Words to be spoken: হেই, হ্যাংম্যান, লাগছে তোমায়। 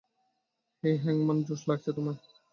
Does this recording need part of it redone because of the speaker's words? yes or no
yes